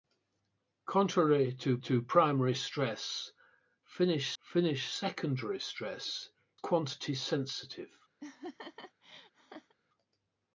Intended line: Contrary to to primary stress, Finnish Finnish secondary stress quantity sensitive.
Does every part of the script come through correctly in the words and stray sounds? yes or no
no